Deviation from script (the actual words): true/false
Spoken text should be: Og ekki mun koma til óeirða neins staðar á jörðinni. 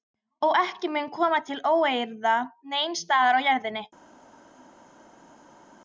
false